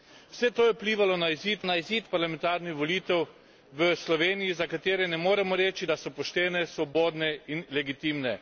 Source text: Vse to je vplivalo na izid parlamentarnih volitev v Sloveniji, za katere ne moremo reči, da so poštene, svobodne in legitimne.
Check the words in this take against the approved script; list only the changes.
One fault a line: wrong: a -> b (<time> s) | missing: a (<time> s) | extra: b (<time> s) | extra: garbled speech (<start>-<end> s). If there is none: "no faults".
extra: na izid (1.6 s)